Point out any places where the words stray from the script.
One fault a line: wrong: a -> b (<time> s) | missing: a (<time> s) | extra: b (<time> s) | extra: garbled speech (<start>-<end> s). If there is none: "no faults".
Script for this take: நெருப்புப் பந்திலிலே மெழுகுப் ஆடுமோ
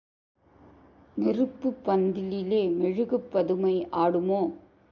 extra: பதுமை (3.3 s)